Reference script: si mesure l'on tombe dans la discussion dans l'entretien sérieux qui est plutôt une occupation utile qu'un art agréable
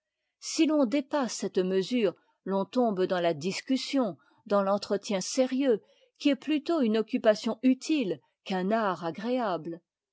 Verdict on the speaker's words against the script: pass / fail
fail